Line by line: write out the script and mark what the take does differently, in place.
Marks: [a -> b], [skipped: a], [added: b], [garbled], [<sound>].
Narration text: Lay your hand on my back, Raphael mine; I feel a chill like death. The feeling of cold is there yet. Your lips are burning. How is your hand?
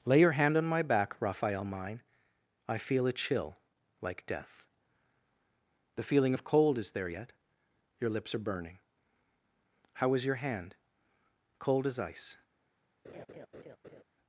Lay your hand on my back, Raphael mine; I feel a chill like death. The feeling of cold is there yet. Your lips are burning. How is your hand? [added: Cold as ice] [laugh]